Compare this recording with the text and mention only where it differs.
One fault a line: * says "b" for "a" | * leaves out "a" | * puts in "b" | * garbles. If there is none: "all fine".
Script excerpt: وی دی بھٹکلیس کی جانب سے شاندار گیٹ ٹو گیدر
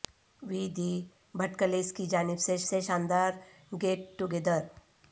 * puts in "سے"